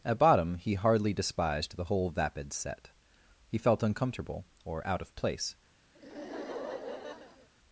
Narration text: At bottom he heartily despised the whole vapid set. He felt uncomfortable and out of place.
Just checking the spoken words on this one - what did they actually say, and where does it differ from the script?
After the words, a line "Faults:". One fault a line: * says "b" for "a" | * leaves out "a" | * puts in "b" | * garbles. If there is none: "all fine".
At bottom he hardly despised the whole vapid set. He felt uncomfortable or out of place.
Faults:
* says "hardly" for "heartily"
* says "or" for "and"